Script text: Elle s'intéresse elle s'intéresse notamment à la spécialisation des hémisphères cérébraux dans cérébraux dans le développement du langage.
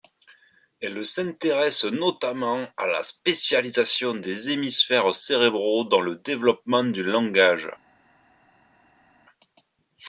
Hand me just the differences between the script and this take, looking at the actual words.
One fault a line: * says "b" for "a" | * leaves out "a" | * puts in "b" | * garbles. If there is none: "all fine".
* leaves out "elle s'intéresse"
* leaves out "cérébraux dans"